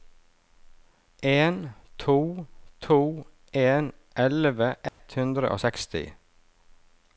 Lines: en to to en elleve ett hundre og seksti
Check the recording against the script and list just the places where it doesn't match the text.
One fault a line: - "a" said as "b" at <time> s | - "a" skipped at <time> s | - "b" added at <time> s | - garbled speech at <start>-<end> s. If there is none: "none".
none